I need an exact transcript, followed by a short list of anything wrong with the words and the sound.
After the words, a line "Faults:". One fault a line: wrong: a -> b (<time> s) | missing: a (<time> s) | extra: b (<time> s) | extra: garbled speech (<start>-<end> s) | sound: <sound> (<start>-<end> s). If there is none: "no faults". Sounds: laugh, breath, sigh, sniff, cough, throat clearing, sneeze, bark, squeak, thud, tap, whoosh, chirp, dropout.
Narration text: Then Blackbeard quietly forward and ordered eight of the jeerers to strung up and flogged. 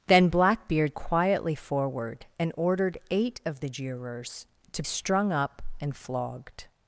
Then Blackbeard quietly forward and ordered eight of the jeerers to strung up and flogged.
Faults:
no faults